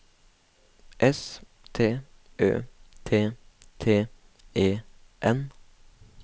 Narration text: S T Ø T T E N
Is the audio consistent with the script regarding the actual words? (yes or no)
yes